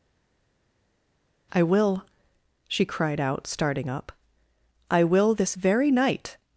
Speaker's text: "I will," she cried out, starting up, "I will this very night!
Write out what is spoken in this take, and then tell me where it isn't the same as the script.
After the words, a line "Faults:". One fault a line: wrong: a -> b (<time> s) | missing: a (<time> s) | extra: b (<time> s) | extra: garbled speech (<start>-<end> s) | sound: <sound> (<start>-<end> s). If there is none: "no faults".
"I will," she cried out, starting up, "I will this very night!
Faults:
no faults